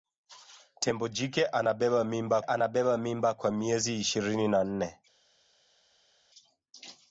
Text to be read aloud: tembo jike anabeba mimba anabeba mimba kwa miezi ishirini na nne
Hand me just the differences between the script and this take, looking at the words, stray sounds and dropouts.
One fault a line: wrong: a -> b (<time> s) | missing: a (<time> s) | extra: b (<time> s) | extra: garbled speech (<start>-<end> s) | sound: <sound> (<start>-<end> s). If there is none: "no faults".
no faults